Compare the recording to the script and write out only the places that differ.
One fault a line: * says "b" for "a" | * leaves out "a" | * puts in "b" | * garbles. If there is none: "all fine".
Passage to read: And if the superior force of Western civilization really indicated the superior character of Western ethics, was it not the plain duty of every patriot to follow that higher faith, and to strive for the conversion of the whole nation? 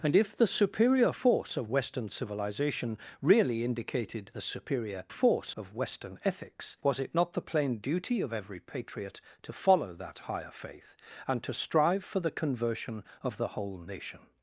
* says "force" for "character"